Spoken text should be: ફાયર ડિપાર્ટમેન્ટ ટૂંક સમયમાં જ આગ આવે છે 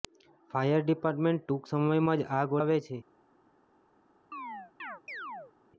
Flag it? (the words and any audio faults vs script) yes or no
yes